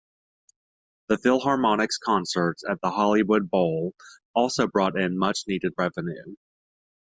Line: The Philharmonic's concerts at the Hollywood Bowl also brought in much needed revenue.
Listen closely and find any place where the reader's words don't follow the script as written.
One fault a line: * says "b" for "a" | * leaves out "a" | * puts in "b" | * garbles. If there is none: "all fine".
all fine